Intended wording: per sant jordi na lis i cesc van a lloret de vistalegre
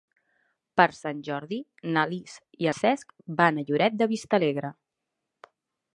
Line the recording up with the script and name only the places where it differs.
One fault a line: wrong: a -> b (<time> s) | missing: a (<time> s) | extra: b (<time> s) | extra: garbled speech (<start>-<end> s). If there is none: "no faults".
no faults